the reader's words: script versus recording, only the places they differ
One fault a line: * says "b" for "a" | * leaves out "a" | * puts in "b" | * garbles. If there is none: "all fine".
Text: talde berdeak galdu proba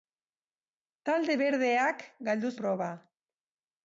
all fine